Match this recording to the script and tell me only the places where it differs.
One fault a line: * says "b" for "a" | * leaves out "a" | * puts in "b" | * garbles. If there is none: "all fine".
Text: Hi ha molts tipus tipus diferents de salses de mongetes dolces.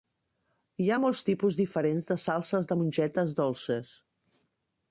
* leaves out "tipus"